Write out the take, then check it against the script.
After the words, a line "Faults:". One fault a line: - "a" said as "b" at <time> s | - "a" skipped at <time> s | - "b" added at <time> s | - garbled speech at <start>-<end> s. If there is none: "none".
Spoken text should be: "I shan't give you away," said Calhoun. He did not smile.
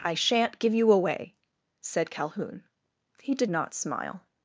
"I shan't give you away," said Calhoun. He did not smile.
Faults:
none